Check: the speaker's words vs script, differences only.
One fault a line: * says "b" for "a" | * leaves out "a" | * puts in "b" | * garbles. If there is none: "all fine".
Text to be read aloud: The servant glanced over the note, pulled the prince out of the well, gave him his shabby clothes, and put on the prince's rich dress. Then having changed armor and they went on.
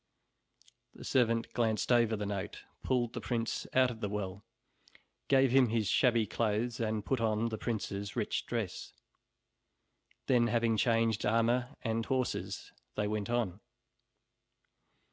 * puts in "horses"